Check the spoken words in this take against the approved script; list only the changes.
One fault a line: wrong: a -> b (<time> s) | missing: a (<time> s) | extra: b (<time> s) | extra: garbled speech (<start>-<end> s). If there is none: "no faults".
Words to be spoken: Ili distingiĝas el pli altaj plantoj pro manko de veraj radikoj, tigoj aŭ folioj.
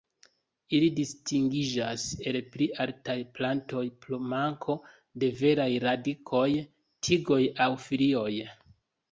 no faults